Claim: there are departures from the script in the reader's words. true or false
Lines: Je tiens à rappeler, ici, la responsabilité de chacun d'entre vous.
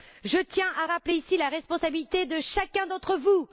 false